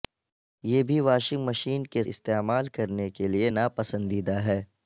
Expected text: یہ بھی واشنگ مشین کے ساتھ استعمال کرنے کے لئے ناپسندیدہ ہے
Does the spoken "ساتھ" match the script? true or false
false